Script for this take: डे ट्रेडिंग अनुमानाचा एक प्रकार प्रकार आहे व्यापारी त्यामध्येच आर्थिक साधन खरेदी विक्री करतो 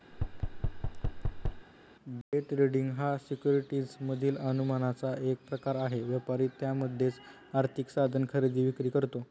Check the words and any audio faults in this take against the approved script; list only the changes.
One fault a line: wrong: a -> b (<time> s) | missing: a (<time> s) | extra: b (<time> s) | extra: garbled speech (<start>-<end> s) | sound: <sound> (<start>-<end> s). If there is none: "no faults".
sound: thud (0.1-1.7 s)
extra: हा सिक्युरिटीज मधील (2.9 s)
missing: प्रकार (5.8 s)